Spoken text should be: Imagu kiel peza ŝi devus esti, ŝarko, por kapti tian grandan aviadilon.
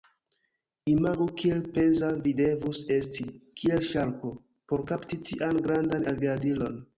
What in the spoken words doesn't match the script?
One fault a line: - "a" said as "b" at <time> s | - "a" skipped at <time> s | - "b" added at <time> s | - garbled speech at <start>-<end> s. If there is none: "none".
- "ŝi" said as "vi" at 2.2 s
- "kiel" added at 3.6 s